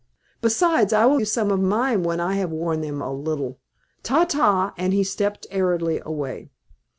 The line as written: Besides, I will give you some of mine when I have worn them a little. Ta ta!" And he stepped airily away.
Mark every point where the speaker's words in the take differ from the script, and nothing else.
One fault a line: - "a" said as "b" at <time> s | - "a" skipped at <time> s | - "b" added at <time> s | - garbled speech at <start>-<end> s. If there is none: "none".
- "give" skipped at 1.2 s